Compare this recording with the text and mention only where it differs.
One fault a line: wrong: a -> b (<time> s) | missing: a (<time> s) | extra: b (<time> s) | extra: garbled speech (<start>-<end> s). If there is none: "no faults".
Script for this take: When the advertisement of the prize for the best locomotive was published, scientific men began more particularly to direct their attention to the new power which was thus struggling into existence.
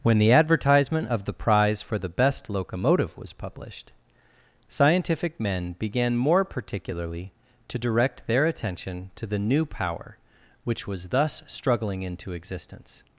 no faults